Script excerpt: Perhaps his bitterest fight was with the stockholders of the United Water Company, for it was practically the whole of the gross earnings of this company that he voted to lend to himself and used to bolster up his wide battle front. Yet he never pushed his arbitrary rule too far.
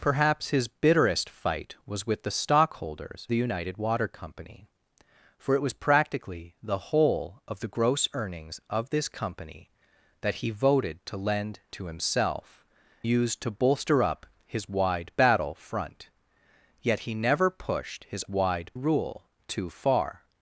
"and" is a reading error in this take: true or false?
true